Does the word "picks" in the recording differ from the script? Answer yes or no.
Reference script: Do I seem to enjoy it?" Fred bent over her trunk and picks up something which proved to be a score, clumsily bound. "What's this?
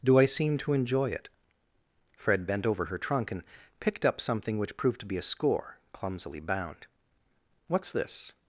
yes